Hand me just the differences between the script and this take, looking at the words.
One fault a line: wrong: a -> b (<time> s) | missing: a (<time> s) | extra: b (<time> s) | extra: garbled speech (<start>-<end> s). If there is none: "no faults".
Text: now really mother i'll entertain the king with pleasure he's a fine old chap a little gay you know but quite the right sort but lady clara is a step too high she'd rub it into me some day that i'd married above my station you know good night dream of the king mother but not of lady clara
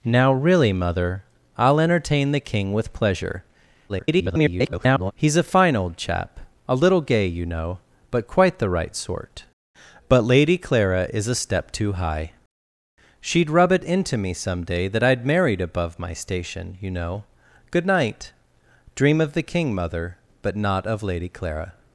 extra: garbled speech (3.9-5.1 s)